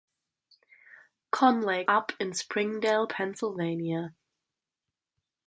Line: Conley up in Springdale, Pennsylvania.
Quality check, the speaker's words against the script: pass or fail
pass